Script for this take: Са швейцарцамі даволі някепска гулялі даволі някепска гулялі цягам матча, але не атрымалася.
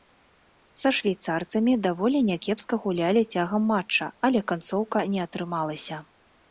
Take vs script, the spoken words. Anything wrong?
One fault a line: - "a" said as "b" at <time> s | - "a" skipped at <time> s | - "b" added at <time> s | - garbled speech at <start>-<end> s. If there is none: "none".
- "даволі някепска гулялі" skipped at 3.2 s
- "канцоўка" added at 4.5 s